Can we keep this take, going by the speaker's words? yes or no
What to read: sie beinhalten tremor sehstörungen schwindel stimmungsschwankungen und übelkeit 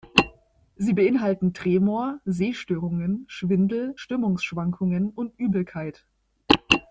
yes